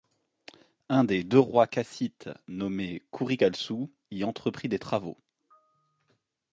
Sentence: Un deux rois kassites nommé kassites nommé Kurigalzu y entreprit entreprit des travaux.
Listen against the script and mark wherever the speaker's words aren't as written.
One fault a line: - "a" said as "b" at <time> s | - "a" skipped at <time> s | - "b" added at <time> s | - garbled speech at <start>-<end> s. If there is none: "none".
- "des" added at 1.0 s
- "kassites nommé" skipped at 3.0 s
- "entreprit" skipped at 4.7 s